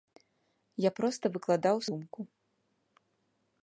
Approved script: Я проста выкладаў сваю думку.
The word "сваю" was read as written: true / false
false